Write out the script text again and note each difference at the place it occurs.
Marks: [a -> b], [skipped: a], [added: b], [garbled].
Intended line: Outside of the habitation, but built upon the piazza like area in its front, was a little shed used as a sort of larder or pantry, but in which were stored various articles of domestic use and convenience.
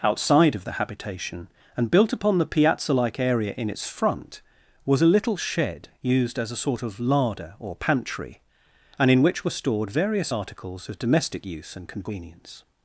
Outside of the habitation, [but -> and] built upon the piazza like area in its front, was a little shed used as a sort of larder or pantry, [but -> and] in which were stored various articles of domestic use and convenience.